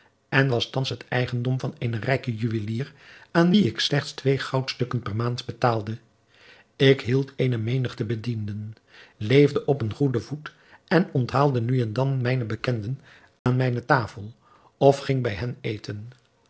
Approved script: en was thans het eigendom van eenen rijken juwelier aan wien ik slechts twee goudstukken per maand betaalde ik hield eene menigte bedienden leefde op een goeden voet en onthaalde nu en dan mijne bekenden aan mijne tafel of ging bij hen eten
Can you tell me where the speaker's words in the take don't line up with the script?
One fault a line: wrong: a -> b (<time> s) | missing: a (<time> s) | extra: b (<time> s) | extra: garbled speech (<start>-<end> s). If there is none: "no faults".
no faults